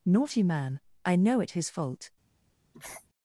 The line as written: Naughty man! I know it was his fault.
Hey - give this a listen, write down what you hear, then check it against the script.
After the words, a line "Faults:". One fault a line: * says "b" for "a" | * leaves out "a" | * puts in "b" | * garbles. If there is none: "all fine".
Naughty man! I know it his fault.
Faults:
* leaves out "was"